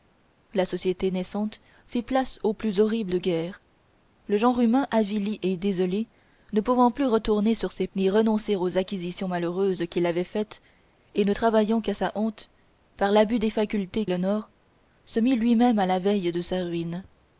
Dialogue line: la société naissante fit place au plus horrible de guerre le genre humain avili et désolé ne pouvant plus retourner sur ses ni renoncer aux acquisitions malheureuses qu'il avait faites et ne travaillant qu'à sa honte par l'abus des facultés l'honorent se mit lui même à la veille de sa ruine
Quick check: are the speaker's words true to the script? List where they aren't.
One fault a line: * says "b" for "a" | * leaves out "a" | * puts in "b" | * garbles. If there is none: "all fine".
all fine